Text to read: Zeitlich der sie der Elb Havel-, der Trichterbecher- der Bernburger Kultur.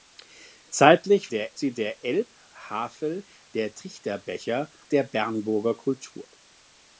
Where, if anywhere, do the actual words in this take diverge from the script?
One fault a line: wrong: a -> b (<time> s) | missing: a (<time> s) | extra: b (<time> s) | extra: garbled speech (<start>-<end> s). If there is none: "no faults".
no faults